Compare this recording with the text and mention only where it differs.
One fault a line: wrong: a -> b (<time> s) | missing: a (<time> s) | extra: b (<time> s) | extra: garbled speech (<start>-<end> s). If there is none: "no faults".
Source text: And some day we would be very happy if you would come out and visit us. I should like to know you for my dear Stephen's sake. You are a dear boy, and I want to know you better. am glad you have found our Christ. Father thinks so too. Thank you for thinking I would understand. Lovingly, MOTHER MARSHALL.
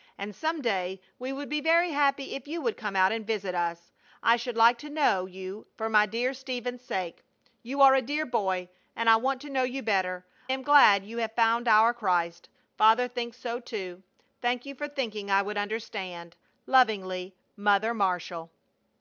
no faults